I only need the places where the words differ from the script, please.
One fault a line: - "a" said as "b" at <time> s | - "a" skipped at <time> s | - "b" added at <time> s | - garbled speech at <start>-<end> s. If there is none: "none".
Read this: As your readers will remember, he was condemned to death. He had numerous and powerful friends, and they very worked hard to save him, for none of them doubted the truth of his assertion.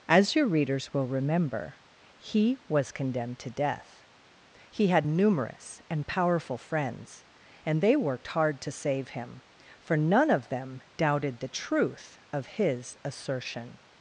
- "very" skipped at 8.0 s